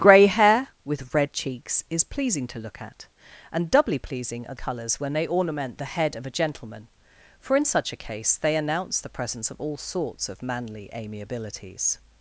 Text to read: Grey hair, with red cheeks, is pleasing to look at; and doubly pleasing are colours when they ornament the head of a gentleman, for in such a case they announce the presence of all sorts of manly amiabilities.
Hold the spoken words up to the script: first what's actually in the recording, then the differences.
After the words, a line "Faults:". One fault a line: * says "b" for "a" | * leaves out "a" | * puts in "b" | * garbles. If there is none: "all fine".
Grey hair, with red cheeks, is pleasing to look at; and doubly pleasing are colours when they ornament the head of a gentleman, for in such a case they announce the presence of all sorts of manly amiabilities.
Faults:
all fine